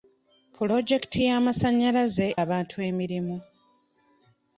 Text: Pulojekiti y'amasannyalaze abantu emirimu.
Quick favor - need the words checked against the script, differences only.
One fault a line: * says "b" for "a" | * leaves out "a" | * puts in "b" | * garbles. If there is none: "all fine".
all fine